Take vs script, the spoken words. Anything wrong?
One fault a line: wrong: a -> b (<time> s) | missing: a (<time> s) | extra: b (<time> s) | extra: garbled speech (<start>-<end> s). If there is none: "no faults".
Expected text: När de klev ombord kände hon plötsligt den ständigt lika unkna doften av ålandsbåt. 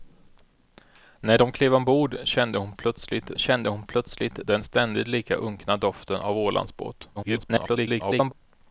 extra: kände hon plötsligt (3.4 s)
extra: garbled speech (7.2-8.3 s)